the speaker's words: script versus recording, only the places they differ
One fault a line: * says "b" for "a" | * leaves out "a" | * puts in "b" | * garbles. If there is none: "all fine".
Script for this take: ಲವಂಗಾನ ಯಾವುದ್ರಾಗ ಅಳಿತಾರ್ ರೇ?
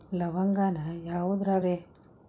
* leaves out "ಅಳಿತಾರ್"